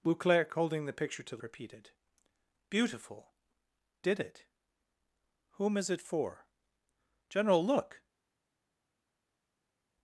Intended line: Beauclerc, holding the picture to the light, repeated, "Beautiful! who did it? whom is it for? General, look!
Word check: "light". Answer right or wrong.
wrong